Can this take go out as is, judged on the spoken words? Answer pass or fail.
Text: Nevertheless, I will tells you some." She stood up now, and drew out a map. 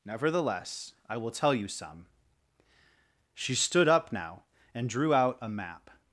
fail